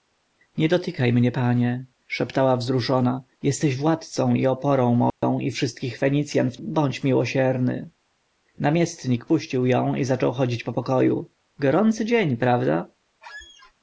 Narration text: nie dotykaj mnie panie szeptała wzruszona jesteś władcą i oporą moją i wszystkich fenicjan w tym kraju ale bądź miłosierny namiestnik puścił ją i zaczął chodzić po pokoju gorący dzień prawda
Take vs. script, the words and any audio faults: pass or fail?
fail